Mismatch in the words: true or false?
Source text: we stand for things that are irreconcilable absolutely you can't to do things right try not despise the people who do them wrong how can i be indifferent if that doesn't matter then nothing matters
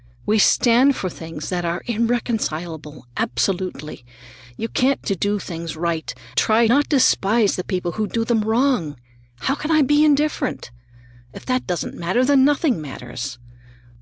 false